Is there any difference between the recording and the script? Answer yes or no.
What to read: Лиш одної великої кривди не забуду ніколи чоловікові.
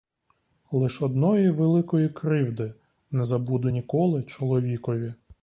no